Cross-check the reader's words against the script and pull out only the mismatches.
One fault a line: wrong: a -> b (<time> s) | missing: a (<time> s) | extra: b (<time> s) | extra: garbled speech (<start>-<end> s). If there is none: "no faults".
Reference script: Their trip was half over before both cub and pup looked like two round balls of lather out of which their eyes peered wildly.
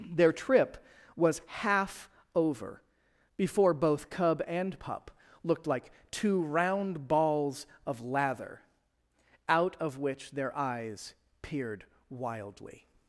no faults